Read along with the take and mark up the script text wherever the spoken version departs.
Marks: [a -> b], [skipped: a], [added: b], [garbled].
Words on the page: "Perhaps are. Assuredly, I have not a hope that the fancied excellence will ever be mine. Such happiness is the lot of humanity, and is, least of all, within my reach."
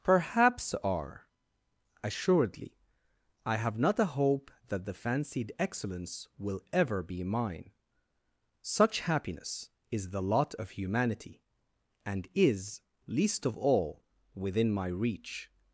"Perhaps are. Assuredly, I have not a hope that the fancied excellence will ever be mine. Such happiness is the lot of humanity, and is, least of all, within my reach."